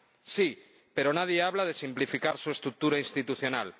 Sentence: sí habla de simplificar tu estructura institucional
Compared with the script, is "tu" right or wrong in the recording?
wrong